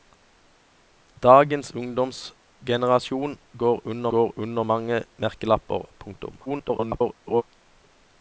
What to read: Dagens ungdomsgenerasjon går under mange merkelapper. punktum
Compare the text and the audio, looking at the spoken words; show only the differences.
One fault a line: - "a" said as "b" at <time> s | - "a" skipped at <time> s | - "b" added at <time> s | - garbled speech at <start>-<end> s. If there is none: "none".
- "går under" added at 4.2 s
- garbled speech at 6.5-7.4 s